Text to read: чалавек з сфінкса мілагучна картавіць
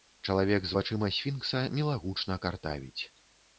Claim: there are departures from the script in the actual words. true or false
true